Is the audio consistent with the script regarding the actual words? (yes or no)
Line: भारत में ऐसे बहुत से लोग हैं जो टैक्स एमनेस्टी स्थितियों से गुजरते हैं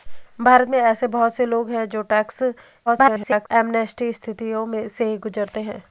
no